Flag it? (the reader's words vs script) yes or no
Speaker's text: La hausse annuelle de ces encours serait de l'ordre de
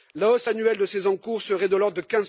no